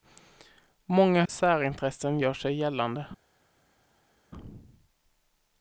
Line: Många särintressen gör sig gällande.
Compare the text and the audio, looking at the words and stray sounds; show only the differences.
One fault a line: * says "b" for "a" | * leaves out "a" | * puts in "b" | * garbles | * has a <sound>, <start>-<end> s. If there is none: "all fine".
all fine